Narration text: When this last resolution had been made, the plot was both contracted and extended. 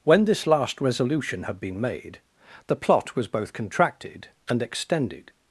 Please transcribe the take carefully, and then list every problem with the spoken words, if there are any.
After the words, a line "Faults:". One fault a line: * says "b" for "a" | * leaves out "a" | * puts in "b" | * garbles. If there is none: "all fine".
When this last resolution had been made, the plot was both contracted and extended.
Faults:
all fine